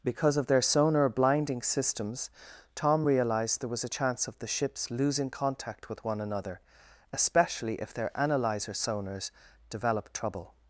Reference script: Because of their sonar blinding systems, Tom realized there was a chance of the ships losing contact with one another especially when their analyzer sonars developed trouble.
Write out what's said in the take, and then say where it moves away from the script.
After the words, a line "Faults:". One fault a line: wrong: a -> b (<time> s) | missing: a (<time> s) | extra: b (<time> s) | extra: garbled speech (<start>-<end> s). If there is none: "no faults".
Because of their sonar blinding systems, Tom realized there was a chance of the ships losing contact with one another especially if their analyzer sonars developed trouble.
Faults:
wrong: when -> if (7.8 s)